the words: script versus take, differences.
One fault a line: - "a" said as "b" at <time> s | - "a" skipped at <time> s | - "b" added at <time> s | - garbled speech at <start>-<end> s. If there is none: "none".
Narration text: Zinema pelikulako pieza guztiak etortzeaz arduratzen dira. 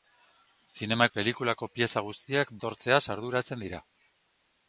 none